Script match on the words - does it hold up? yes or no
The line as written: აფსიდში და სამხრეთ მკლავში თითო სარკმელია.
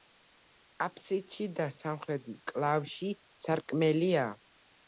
no